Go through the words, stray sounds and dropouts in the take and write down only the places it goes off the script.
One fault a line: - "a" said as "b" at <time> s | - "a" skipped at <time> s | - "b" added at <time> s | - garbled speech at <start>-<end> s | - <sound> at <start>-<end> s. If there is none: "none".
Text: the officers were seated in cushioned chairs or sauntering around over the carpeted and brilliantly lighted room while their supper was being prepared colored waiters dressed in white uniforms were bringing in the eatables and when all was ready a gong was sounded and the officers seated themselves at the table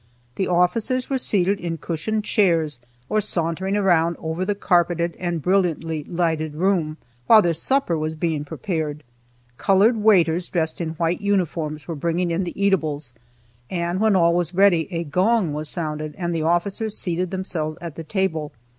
none